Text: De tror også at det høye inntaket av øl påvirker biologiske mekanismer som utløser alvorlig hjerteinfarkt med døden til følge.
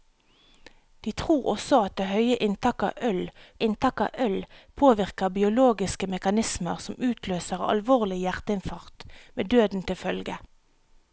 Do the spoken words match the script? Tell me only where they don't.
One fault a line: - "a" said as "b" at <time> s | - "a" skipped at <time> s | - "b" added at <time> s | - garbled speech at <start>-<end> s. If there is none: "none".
- "inntaket av øl" added at 3.7 s